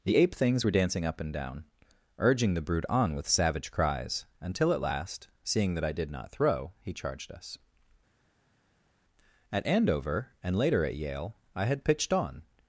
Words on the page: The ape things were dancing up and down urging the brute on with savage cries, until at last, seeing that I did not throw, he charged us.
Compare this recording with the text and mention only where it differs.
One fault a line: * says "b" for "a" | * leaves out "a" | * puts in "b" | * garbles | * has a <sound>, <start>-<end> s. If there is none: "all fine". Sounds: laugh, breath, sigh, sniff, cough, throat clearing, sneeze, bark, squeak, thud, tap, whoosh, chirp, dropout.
* puts in "At Andover and later at Yale I had pitched on"